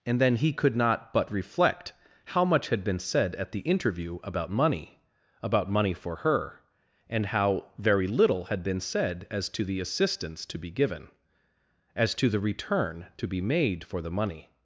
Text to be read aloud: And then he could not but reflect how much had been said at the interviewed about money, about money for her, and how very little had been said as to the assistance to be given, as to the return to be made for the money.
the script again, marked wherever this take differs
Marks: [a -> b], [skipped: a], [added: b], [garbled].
And then he could not but reflect how much had been said at the [interviewed -> interview] about money, about money for her, and how very little had been said as to the assistance to be given, as to the return to be made for the money.